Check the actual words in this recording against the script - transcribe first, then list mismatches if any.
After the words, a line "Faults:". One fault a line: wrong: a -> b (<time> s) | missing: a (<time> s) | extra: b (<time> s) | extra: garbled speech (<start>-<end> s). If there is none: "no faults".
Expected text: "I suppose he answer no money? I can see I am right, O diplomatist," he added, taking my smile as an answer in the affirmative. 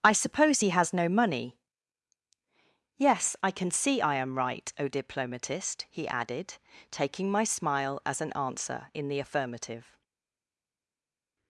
"I suppose he has no money? Yes, I can see I am right, O diplomatist," he added, taking my smile as an answer in the affirmative.
Faults:
wrong: answer -> has (0.7 s)
extra: Yes (3.0 s)